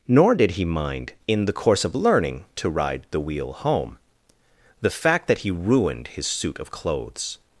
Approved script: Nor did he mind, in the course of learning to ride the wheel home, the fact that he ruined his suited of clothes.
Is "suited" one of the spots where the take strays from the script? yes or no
yes